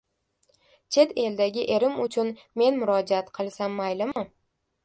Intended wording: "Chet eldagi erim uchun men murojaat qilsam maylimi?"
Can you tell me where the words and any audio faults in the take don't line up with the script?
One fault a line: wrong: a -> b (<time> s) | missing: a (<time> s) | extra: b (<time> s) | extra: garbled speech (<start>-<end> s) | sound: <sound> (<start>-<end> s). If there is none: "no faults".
sound: dropout (4.1-4.2 s)